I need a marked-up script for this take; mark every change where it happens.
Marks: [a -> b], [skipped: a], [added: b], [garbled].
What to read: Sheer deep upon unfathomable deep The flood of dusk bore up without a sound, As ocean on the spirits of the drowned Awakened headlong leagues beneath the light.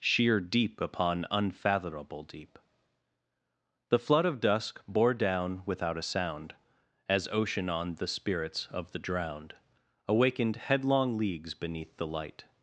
Sheer deep upon unfathomable deep The flood of dusk bore [up -> down] without a sound, As ocean on the spirits of the drowned Awakened headlong leagues beneath the light.